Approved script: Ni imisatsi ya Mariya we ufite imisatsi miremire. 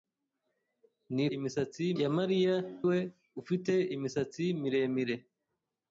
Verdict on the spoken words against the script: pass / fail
pass